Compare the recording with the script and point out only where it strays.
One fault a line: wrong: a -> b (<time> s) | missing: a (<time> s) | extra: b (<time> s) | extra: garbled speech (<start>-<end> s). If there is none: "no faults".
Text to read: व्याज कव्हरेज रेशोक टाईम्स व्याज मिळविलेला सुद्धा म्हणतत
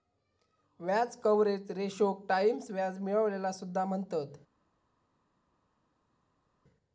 no faults